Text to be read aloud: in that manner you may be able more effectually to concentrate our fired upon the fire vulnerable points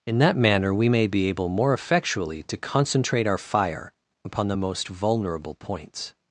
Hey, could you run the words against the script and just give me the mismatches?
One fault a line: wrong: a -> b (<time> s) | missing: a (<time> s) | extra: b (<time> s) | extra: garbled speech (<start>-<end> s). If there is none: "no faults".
wrong: you -> we (0.7 s)
wrong: fired -> fire (3.4 s)
wrong: fire -> most (4.5 s)